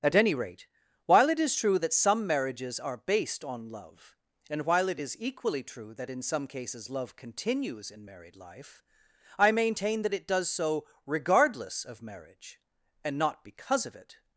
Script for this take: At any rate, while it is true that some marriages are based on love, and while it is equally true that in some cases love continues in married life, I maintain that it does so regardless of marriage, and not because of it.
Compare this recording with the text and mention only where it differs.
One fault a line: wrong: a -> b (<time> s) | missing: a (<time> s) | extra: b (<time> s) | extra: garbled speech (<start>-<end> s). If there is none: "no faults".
no faults